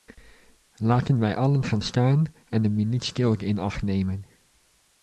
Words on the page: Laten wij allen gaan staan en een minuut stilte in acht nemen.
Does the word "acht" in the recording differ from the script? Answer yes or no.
no